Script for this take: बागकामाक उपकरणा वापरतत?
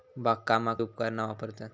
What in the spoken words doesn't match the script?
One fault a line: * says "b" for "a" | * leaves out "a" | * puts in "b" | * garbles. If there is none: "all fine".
all fine